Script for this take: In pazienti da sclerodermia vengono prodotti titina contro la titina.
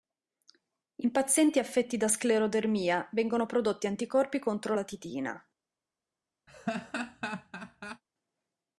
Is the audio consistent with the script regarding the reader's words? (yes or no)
no